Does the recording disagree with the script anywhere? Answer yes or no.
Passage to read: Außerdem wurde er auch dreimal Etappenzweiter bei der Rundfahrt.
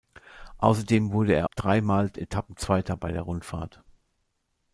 yes